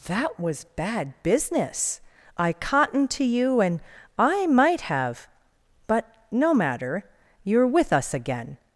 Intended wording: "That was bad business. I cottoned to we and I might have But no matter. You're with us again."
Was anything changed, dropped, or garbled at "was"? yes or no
no